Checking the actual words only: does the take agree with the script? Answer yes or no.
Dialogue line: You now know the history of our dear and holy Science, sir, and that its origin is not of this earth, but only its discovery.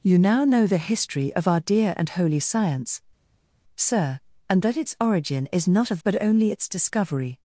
no